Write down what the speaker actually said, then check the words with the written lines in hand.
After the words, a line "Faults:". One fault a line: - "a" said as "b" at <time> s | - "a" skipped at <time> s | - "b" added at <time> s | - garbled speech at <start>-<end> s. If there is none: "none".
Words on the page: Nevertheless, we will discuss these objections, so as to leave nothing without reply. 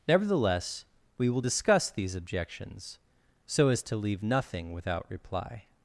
Nevertheless, we will discuss these objections, so as to leave nothing without reply.
Faults:
none